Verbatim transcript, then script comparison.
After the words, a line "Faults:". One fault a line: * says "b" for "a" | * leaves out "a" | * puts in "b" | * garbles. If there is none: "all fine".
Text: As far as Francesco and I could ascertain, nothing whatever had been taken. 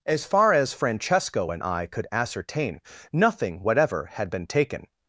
As far as Francesco and I could ascertain, nothing whatever had been taken.
Faults:
all fine